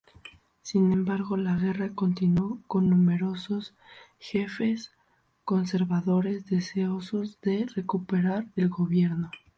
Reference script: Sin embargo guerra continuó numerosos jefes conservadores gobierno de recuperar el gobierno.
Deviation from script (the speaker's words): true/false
true